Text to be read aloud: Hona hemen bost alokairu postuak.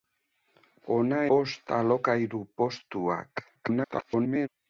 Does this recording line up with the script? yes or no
no